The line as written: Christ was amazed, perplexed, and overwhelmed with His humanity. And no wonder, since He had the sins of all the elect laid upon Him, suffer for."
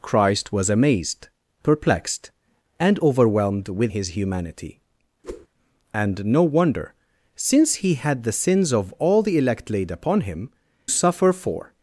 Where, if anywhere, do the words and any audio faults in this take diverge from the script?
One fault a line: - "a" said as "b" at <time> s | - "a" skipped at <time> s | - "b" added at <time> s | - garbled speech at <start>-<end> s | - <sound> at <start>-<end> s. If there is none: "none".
- whoosh at 5.2-5.5 s